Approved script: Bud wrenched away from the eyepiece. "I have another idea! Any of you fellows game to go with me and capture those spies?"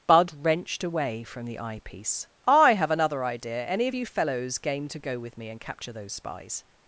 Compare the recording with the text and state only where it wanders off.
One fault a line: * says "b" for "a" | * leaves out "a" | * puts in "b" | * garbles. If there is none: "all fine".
all fine